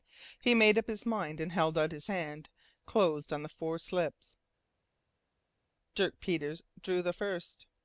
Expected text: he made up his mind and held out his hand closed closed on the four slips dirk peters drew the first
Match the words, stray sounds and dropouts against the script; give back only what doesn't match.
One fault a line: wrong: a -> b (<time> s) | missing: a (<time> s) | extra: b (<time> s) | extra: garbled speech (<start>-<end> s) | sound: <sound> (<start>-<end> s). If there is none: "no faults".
missing: closed (3.3 s)